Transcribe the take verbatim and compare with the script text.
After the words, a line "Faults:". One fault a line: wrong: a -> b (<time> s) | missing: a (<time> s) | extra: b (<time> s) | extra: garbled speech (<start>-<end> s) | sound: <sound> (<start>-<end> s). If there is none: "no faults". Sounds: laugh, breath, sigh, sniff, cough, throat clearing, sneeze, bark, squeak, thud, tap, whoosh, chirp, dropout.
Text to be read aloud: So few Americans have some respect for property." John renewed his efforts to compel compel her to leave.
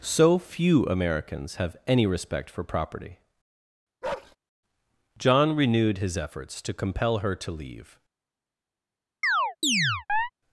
So few Americans have any respect for property." John renewed his efforts to compel her to leave.
Faults:
wrong: some -> any (1.9 s)
sound: bark (4.0-4.4 s)
missing: compel (7.2 s)
sound: chirp (9.2-10.3 s)